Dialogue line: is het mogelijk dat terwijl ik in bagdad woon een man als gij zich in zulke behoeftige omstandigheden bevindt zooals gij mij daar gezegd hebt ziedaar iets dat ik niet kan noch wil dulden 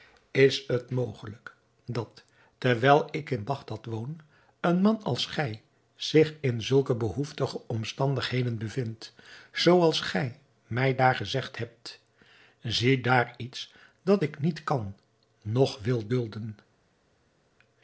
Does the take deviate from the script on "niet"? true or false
false